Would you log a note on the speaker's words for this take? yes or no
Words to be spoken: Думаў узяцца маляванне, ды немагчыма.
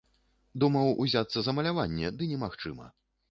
yes